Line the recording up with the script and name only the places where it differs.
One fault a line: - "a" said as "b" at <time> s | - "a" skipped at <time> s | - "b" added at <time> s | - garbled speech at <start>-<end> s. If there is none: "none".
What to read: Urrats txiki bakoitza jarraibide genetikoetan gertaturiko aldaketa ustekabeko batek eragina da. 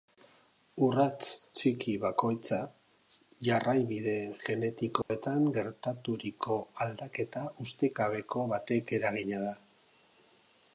none